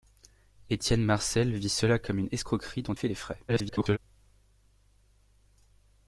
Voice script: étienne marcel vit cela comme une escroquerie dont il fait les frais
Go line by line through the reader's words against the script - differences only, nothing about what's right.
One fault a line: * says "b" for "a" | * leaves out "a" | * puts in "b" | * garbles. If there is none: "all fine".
* leaves out "il"
* garbles